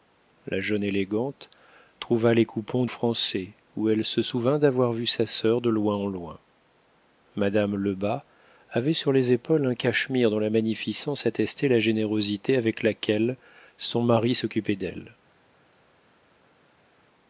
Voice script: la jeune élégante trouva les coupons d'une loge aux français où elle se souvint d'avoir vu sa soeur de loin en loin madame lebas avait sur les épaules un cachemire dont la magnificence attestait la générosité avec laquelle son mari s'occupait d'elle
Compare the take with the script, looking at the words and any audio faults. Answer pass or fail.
fail